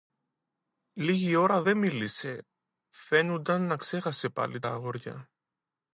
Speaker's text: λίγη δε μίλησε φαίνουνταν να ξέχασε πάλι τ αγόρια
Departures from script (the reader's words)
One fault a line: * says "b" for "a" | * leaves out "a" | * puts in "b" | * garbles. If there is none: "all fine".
* puts in "ώρα"